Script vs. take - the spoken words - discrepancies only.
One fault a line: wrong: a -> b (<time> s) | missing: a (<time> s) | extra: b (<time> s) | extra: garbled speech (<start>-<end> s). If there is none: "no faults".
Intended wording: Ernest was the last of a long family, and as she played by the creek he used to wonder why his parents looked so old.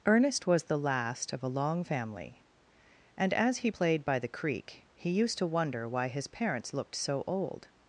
wrong: she -> he (3.6 s)